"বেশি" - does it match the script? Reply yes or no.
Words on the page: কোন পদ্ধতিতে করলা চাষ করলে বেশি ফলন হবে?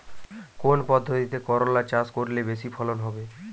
yes